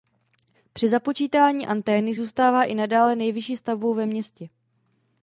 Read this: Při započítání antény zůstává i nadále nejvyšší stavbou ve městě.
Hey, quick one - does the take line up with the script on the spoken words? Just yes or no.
yes